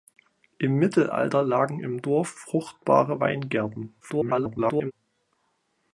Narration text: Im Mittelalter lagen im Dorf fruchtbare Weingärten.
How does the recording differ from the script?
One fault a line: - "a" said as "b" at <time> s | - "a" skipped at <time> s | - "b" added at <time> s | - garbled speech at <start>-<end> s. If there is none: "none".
- garbled speech at 4.0-4.9 s